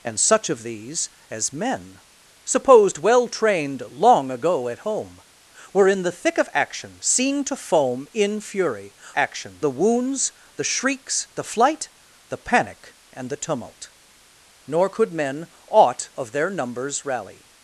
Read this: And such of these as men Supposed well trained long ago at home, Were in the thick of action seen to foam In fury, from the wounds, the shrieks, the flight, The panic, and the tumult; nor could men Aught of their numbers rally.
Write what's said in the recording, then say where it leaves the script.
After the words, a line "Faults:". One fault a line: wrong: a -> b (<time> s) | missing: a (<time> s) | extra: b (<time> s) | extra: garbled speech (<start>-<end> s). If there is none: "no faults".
And such of these as men Supposed well trained long ago at home, Were in the thick of action seen to foam In fury, action the wounds, the shrieks, the flight, The panic, and the tumult; nor could men Aught of their numbers rally.
Faults:
wrong: from -> action (9.1 s)